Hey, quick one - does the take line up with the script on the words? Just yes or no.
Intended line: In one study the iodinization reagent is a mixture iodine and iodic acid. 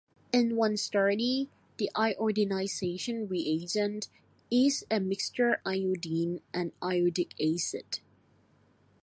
yes